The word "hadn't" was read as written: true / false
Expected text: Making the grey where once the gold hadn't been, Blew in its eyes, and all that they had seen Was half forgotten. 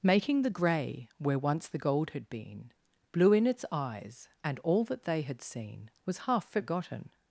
false